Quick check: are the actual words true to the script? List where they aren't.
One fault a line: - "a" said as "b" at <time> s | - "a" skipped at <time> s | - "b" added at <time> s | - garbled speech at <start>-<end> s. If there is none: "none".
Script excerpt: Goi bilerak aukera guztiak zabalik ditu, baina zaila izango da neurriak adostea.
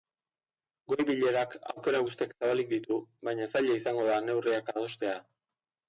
none